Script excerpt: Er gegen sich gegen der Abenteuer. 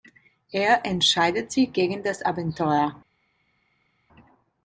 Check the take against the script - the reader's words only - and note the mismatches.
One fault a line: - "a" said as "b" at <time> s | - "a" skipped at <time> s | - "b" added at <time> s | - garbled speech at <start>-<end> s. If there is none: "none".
- "gegen" said as "entscheidet" at 0.8 s
- "der" said as "das" at 2.0 s